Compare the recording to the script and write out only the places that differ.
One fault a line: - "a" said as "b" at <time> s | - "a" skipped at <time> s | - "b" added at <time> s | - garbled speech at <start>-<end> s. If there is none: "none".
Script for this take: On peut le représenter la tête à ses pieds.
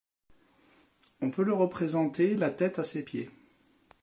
none